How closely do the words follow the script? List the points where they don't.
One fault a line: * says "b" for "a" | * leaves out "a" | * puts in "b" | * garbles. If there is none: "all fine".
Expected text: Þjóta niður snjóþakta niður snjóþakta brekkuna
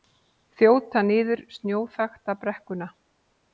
* leaves out "niður snjóþakta"